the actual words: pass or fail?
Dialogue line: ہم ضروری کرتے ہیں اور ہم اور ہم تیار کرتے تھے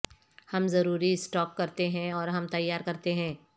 fail